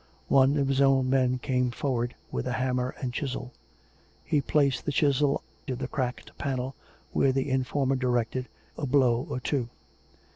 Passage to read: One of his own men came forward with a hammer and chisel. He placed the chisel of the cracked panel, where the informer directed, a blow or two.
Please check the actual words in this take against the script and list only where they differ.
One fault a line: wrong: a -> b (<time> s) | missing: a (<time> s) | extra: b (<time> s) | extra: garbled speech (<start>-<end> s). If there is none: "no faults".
no faults